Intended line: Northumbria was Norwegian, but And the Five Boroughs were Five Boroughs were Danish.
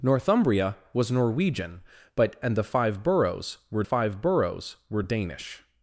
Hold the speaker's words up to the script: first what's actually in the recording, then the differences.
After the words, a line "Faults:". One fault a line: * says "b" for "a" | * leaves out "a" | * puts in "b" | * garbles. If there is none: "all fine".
Northumbria was Norwegian, but And the Five Boroughs were Five Boroughs were Danish.
Faults:
all fine